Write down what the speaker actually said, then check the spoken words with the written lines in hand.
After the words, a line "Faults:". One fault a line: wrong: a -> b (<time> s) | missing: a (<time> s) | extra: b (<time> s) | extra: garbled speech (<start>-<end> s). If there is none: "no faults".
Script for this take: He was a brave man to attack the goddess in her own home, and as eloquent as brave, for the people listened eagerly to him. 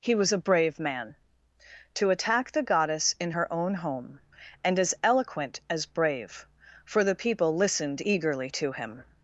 He was a brave man to attack the goddess in her own home, and as eloquent as brave, for the people listened eagerly to him.
Faults:
no faults